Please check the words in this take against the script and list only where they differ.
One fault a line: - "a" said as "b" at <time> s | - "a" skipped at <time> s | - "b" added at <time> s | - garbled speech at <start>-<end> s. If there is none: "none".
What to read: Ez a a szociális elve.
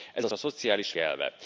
none